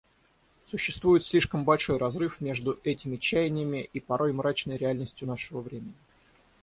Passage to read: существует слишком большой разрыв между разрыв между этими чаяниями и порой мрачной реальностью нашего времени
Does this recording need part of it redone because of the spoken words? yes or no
yes